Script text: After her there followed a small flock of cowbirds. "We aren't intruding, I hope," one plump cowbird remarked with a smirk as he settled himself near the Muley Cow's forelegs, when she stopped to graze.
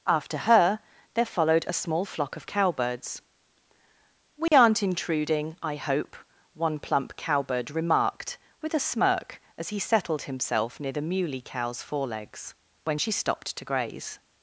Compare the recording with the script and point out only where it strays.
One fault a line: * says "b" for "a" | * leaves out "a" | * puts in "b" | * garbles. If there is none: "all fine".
all fine